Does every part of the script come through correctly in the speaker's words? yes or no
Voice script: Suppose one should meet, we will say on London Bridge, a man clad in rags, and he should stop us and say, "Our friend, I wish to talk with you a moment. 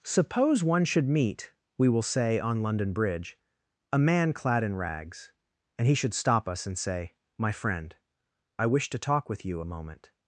no